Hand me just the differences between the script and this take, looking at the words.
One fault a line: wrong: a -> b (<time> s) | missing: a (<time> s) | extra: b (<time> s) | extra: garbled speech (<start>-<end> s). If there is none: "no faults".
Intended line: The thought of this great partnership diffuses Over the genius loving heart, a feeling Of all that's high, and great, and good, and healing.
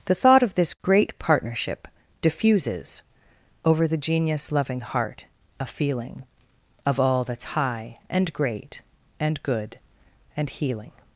no faults